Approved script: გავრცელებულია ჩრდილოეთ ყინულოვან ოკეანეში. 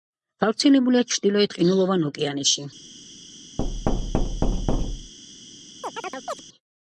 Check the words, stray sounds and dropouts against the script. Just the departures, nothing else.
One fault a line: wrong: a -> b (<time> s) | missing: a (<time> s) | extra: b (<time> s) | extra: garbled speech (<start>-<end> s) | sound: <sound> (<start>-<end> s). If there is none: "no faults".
sound: thud (3.6-5.1 s)
sound: chirp (5.8-6.4 s)